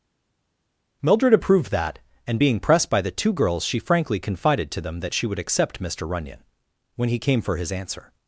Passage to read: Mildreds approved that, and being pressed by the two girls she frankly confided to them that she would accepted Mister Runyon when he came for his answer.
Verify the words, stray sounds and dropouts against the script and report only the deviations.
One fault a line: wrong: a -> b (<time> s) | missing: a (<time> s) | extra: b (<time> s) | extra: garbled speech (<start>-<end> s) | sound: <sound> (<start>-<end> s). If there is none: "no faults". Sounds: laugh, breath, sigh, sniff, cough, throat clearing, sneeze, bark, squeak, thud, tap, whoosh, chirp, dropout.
wrong: Mildreds -> Mildred (1.0 s)
wrong: accepted -> accept (5.4 s)